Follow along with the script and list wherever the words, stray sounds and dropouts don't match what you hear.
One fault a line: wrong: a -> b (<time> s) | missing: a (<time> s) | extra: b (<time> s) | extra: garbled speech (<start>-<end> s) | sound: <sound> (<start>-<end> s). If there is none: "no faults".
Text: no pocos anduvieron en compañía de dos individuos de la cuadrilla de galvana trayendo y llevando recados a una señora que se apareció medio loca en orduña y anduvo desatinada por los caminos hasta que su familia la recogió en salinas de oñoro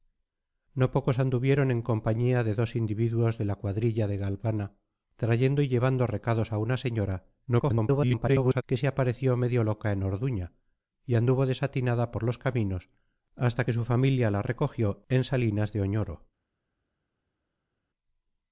extra: garbled speech (7.5-8.6 s)